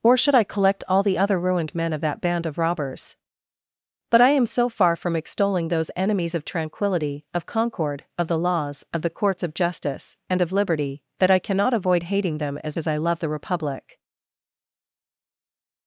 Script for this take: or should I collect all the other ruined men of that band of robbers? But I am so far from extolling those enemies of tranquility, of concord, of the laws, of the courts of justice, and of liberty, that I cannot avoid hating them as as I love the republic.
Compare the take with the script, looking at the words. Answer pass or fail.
pass